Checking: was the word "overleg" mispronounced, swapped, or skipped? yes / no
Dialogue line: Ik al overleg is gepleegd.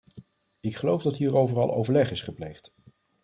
no